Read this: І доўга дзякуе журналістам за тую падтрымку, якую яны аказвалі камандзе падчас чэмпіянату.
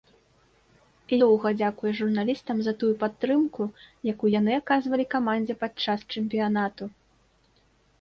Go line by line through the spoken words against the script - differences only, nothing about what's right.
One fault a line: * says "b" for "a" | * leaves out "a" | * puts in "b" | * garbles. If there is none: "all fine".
all fine